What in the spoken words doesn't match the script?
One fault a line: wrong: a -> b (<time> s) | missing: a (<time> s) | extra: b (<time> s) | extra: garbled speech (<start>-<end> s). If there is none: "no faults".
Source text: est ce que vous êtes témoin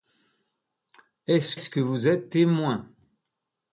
extra: ce (1.6 s)